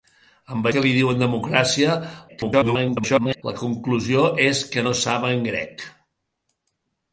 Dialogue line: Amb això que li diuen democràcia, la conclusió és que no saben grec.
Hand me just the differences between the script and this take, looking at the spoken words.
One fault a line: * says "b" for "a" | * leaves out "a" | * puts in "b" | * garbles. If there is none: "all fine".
* leaves out "això"
* garbles